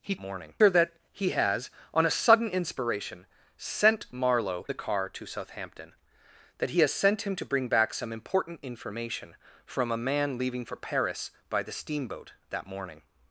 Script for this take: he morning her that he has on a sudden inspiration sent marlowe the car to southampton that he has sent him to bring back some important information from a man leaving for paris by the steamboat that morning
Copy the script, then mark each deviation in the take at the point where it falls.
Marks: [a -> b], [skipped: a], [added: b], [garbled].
he morning her that he has on a sudden inspiration sent marlowe the car to southampton that he has sent him to bring back some important information from a man leaving for paris by the steamboat that morning